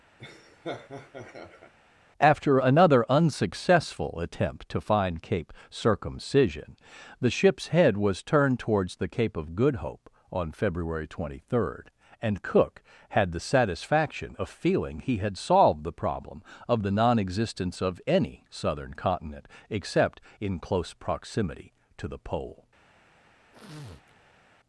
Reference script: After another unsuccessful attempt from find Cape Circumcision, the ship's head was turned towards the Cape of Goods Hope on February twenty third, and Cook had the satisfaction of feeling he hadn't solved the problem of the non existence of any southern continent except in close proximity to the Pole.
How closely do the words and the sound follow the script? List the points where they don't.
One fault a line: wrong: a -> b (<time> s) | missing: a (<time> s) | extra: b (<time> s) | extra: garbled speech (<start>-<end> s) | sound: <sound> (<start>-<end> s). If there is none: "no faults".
sound: laugh (0.2-1.7 s)
wrong: from -> to (4.7 s)
wrong: Goods -> Good (9.6 s)
wrong: hadn't -> had (15.2 s)
sound: sniff (23.5-24.5 s)